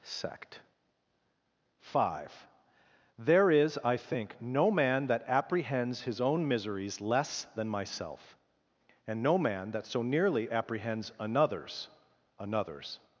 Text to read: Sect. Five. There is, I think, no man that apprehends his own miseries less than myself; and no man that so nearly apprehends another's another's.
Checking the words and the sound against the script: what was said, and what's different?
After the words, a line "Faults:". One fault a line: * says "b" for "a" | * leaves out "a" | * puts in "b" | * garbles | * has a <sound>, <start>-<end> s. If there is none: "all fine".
Sect. Five. There is, I think, no man that apprehends his own miseries less than myself; and no man that so nearly apprehends another's another's.
Faults:
all fine